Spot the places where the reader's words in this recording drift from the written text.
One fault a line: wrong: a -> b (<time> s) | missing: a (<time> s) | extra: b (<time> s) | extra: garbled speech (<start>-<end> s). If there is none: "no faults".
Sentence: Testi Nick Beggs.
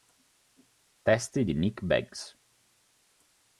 extra: di (1.4 s)